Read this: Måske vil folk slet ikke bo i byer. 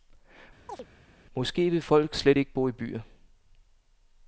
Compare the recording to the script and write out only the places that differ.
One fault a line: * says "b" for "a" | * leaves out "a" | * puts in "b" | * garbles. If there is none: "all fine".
all fine